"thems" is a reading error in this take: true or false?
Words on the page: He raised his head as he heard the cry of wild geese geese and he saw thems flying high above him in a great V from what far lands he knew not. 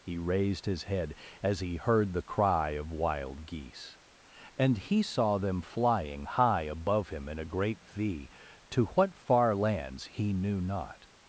true